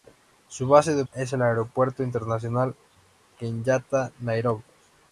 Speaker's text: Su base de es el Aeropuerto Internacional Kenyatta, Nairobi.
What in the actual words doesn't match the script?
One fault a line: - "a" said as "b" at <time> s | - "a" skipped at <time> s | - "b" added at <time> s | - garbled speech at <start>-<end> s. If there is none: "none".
none